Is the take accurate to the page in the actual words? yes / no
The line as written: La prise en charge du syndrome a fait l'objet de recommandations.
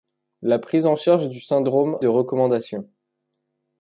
no